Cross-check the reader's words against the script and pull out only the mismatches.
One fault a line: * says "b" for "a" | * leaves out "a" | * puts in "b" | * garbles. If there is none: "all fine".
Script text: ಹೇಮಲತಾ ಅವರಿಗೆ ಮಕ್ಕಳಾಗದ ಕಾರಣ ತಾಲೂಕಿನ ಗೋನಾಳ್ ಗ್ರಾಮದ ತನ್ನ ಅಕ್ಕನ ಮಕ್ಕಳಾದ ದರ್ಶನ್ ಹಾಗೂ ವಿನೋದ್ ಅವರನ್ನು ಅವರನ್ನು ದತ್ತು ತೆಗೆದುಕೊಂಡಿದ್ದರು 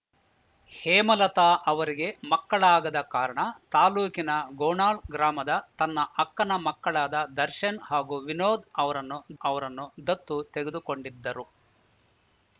all fine